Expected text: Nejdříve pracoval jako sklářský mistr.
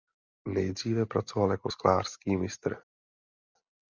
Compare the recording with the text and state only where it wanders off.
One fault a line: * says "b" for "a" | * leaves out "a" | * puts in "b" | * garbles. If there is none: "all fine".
all fine